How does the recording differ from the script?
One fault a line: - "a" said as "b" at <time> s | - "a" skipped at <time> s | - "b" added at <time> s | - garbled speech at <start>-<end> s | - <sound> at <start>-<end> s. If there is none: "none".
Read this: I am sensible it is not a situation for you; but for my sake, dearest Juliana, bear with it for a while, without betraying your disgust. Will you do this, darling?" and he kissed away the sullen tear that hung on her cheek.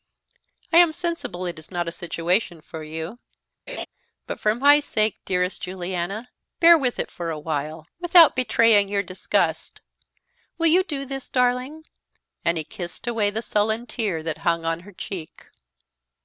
- laugh at 3.7-3.9 s